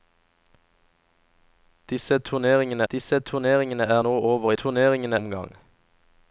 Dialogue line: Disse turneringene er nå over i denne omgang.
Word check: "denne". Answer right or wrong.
wrong